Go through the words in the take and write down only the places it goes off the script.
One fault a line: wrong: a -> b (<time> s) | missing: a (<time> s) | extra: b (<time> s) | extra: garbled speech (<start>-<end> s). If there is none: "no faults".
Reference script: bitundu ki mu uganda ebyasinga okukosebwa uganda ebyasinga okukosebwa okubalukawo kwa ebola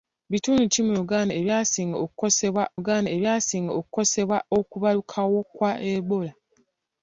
no faults